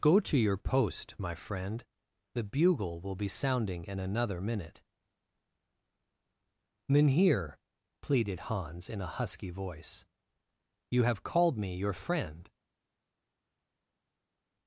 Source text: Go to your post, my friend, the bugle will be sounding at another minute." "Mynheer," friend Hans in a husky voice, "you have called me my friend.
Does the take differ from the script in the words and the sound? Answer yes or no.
yes